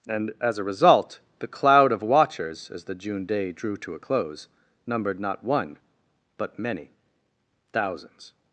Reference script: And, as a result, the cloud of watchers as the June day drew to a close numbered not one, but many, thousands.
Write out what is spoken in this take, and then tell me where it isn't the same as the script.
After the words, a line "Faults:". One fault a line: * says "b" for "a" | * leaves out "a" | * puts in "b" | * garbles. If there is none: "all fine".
And, as a result, the cloud of watchers as the June day drew to a close numbered not one, but many, thousands.
Faults:
all fine